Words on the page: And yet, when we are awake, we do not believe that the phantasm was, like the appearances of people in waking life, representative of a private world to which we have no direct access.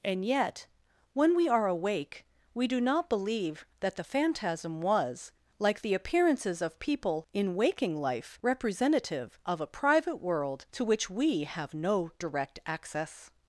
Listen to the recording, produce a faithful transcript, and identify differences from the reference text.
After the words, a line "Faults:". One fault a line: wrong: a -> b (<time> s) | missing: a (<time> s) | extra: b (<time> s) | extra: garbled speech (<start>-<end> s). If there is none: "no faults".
And yet, when we are awake, we do not believe that the phantasm was, like the appearances of people in waking life, representative of a private world to which we have no direct access.
Faults:
no faults